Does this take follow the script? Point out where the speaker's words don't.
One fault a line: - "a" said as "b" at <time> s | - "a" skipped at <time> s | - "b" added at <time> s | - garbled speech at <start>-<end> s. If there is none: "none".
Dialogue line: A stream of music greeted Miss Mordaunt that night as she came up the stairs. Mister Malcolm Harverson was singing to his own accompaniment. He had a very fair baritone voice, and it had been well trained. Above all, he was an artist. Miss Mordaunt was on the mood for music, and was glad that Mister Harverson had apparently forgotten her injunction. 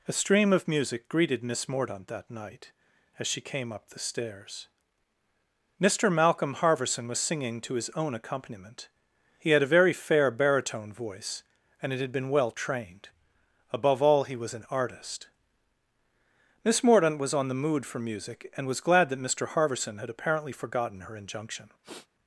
none